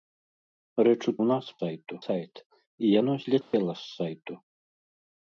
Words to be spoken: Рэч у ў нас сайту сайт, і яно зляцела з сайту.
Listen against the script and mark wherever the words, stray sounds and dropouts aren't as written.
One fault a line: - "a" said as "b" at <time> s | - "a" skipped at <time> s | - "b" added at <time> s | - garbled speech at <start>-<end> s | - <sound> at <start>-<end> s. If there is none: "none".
- dropout at 3.4-3.5 s